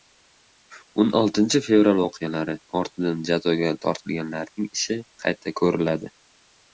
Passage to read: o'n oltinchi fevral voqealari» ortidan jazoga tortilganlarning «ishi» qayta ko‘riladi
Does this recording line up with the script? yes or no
yes